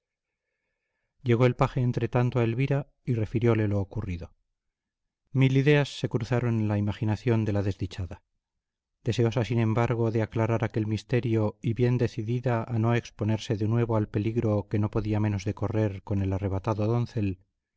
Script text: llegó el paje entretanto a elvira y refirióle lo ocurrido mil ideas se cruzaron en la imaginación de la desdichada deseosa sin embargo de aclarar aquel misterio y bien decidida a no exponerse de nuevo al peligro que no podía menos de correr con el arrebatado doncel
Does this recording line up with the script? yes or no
yes